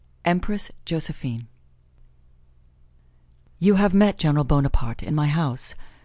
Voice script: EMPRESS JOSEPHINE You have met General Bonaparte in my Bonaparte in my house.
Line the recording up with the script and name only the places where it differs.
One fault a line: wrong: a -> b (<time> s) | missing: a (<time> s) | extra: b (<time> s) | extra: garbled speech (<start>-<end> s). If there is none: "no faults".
missing: Bonaparte in my (5.3 s)